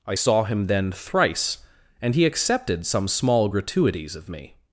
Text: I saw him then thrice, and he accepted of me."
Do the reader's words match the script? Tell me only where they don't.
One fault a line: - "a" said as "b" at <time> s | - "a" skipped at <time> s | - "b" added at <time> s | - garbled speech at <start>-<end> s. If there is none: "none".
- "some small gratuities" added at 2.8 s